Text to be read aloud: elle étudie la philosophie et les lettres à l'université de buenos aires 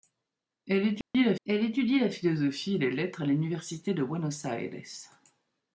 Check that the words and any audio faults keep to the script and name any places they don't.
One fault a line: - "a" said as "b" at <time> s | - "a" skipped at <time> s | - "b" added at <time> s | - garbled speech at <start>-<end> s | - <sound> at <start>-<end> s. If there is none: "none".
- dropout at 1.0-1.1 s
- "elle étudie la" added at 1.4 s